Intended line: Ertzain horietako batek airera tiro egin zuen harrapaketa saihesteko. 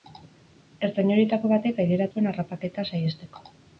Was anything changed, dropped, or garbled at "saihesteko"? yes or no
no